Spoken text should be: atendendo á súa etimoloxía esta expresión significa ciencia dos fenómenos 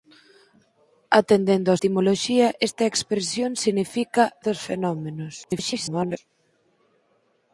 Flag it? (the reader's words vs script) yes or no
yes